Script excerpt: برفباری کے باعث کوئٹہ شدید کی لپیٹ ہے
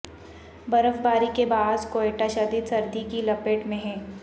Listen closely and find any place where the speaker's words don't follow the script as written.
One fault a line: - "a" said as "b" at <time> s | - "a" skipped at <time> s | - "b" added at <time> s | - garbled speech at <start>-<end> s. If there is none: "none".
- "سردی" added at 2.6 s
- "میں" added at 3.7 s